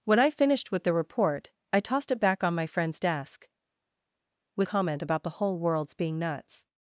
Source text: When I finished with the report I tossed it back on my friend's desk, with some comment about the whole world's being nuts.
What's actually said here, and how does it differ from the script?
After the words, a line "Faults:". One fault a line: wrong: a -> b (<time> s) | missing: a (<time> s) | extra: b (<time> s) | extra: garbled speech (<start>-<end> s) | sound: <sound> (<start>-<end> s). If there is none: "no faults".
When I finished with the report I tossed it back on my friend's desk, with comment about the whole world's being nuts.
Faults:
missing: some (4.7 s)